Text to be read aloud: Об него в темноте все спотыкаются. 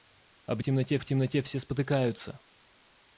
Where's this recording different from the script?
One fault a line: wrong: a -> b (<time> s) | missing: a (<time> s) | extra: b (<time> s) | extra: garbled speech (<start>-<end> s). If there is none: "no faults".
wrong: него -> темноте (0.6 s)